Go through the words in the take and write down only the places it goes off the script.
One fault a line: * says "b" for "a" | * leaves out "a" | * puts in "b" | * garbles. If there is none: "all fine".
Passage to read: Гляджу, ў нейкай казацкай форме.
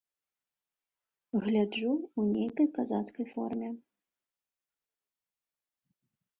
all fine